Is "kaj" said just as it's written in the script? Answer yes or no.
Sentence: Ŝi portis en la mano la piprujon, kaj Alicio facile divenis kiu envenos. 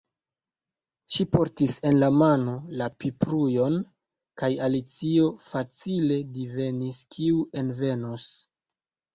yes